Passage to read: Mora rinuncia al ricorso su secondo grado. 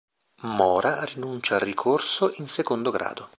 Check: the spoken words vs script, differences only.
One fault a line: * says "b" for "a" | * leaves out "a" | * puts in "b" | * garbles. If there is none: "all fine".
* says "in" for "su"